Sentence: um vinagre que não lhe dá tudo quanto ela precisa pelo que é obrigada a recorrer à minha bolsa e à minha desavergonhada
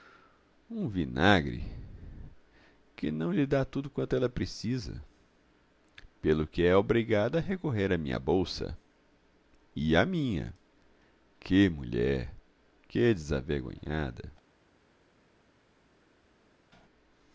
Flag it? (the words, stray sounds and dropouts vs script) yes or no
yes